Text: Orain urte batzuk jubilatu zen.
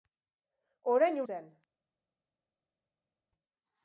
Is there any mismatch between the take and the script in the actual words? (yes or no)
yes